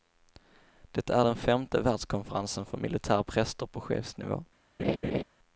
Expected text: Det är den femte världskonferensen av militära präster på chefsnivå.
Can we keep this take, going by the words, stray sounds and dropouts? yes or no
no